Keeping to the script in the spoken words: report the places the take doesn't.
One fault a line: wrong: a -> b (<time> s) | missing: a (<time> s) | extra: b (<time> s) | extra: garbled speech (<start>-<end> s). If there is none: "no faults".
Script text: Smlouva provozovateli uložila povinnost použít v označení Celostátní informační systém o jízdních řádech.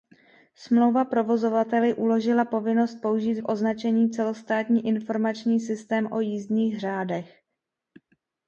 no faults